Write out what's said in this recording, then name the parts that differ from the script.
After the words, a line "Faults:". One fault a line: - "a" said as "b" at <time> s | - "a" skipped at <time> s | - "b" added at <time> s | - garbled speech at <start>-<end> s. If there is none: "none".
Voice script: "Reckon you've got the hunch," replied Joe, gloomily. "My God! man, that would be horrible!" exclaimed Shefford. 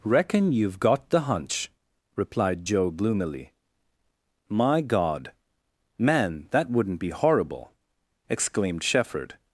"Reckon you've got the hunch," replied Joe, gloomily. "My God! man, that wouldn't be horrible!" exclaimed Shefford.
Faults:
- "would" said as "wouldn't" at 6.7 s